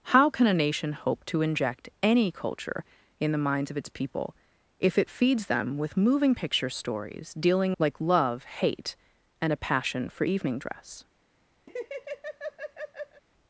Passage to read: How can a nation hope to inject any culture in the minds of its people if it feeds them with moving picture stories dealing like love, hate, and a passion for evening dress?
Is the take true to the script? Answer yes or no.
yes